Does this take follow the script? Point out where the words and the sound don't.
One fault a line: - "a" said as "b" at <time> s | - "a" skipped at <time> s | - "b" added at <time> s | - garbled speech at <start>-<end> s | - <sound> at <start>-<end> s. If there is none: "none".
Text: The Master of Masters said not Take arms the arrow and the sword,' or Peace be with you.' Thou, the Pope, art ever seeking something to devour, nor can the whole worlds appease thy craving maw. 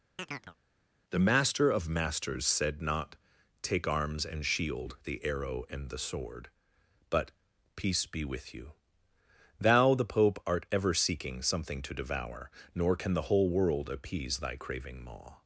- chirp at 0.2-0.6 s
- "and shield" added at 4.2 s
- "or" said as "but" at 7.1 s
- "worlds" said as "world" at 13.5 s